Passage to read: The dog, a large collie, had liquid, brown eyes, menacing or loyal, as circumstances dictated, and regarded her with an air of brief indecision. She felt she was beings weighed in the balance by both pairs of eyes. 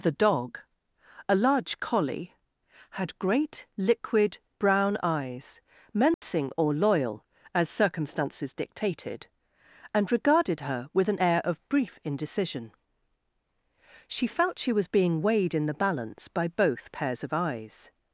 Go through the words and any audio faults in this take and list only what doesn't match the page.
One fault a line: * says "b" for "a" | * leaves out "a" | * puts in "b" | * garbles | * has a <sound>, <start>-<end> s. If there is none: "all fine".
* puts in "great"
* has a dropout, 6.1-6.2 s
* says "being" for "beings"